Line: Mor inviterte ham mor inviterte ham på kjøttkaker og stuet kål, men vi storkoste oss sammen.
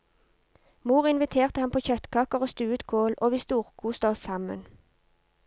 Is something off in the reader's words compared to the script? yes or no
yes